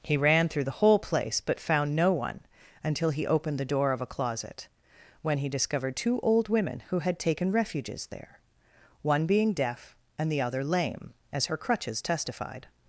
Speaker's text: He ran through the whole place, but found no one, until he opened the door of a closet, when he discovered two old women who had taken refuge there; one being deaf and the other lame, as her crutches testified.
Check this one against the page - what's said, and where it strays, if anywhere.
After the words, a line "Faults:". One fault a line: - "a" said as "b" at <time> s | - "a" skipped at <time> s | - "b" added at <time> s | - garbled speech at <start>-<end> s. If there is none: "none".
He ran through the whole place, but found no one, until he opened the door of a closet, when he discovered two old women who had taken refuges there; one being deaf and the other lame, as her crutches testified.
Faults:
- "refuge" said as "refuges" at 7.5 s